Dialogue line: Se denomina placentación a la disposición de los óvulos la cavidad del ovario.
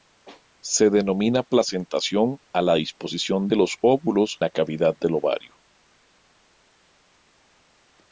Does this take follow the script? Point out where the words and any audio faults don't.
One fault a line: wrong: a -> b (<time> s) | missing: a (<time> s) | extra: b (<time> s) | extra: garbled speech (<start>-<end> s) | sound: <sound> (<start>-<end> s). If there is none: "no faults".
no faults